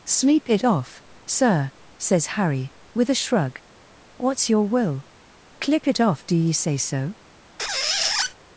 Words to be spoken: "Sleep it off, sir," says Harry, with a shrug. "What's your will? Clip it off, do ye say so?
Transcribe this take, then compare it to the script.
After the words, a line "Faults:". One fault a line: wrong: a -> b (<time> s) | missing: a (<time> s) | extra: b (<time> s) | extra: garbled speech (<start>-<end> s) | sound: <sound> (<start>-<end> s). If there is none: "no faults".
"Sleep it off, sir," says Harry, with a shrug. "What's your will? Clip it off, do ye say so?
Faults:
sound: squeak (7.6-8.3 s)